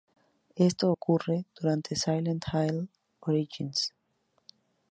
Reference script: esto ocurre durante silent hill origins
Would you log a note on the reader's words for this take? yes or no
no